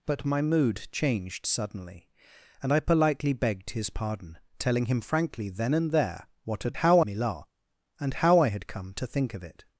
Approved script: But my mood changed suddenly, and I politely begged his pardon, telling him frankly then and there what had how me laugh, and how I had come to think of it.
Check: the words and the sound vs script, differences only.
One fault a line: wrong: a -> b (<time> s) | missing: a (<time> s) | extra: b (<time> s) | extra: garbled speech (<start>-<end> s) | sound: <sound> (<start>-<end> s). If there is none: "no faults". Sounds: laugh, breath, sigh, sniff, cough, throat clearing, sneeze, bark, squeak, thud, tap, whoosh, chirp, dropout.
no faults